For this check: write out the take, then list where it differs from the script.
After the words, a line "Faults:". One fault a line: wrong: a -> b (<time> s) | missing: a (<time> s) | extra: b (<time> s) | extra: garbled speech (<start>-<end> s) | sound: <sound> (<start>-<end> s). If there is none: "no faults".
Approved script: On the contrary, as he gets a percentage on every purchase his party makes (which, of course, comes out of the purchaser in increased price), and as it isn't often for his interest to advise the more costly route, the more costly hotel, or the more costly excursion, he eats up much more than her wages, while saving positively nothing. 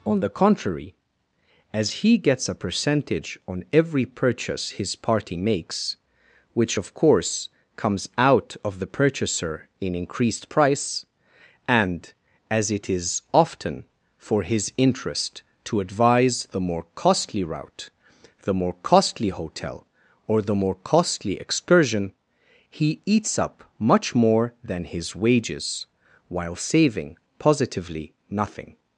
On the contrary, as he gets a percentage on every purchase his party makes (which, of course, comes out of the purchaser in increased price), and as it is often for his interest to advise the more costly route, the more costly hotel, or the more costly excursion, he eats up much more than his wages, while saving positively nothing.
Faults:
wrong: isn't -> is (12.9 s)
wrong: her -> his (24.8 s)